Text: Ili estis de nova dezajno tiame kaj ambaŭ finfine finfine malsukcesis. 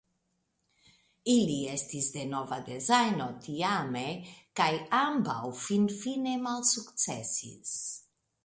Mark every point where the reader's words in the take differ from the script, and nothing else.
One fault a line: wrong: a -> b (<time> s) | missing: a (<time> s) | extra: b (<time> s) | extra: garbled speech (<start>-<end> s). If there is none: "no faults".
missing: finfine (6.4 s)